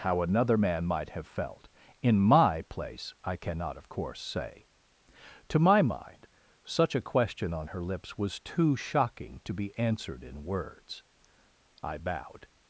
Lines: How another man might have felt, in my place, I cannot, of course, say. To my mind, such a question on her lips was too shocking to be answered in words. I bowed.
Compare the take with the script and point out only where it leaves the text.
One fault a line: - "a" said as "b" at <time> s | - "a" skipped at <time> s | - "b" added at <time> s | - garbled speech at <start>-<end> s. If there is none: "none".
none